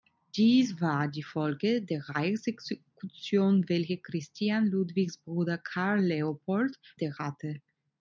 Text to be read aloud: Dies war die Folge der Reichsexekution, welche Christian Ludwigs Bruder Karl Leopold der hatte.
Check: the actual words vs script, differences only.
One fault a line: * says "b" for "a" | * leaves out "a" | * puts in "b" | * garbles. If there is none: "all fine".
all fine